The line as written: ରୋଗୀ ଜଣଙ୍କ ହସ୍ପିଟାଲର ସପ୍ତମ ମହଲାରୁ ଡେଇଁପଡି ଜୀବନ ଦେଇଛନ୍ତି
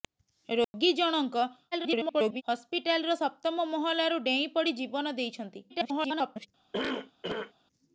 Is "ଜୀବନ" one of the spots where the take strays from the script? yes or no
no